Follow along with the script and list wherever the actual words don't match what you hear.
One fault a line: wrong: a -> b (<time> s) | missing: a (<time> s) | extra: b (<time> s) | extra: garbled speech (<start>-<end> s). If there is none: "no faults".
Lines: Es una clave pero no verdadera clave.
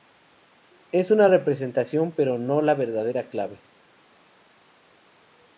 wrong: clave -> representación (1.3 s)
extra: la (2.6 s)